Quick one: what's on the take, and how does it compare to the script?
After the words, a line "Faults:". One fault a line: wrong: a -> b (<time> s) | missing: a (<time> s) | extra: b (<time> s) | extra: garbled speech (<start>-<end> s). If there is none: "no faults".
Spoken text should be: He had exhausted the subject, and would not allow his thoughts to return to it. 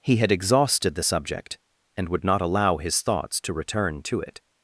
He had exhausted the subject, and would not allow his thoughts to return to it.
Faults:
no faults